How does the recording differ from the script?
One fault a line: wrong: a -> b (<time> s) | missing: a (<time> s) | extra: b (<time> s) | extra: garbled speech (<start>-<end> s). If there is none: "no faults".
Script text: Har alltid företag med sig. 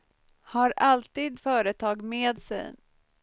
no faults